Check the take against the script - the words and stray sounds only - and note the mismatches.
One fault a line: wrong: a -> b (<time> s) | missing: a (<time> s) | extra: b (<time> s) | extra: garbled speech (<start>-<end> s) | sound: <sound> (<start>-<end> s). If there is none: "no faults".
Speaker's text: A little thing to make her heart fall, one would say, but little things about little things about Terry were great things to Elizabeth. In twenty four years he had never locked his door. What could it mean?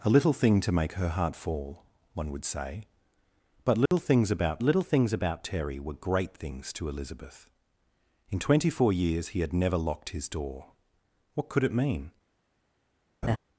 sound: dropout (3.9-3.9 s)
sound: laugh (13.2-13.4 s)